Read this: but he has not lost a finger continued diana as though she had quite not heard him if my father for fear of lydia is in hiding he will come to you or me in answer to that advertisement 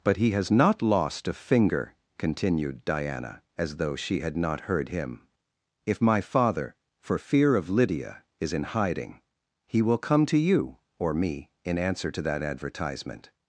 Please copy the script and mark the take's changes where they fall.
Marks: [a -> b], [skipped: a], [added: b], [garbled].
but he has not lost a finger continued diana as though she had [skipped: quite] not heard him if my father for fear of lydia is in hiding he will come to you or me in answer to that advertisement